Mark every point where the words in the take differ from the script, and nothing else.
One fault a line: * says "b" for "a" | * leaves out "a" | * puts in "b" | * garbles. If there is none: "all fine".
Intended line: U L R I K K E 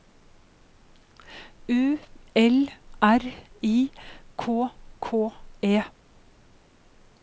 all fine